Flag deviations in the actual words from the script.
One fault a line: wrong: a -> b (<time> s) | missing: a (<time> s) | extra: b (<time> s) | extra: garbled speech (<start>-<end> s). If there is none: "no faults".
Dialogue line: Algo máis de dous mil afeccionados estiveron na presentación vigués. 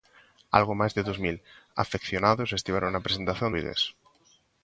no faults